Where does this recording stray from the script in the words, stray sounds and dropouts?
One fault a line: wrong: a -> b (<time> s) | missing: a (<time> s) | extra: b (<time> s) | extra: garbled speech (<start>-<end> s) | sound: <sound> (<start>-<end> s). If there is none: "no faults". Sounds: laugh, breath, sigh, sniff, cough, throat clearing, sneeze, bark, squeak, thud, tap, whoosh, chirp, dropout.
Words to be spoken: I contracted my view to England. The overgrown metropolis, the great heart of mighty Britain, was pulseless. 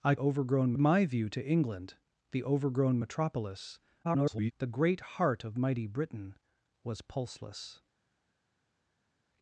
wrong: contracted -> overgrown (0.2 s)
extra: garbled speech (4.0-4.5 s)